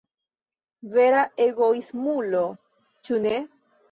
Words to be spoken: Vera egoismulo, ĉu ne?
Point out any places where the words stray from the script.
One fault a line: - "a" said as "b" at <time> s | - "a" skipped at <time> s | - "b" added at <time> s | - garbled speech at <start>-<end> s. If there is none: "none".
none